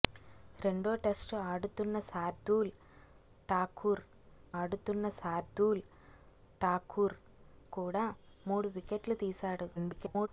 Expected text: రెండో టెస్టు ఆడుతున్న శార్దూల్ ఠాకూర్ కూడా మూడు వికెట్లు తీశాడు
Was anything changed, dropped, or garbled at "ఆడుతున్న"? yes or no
no